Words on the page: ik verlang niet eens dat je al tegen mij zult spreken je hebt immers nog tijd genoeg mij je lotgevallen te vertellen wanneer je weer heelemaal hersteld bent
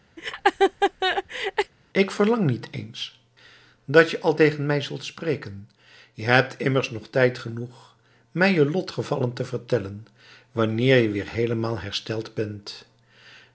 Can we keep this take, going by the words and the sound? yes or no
no